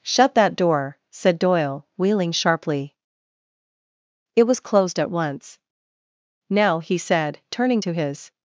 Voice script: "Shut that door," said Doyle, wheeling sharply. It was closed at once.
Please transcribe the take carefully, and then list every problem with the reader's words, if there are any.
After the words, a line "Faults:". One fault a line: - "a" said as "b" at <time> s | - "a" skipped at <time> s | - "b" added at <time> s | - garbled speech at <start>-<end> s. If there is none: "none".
"Shut that door," said Doyle, wheeling sharply. It was closed at once. "Now," he said, turning to his
Faults:
- "Now he said turning to his" added at 6.5 s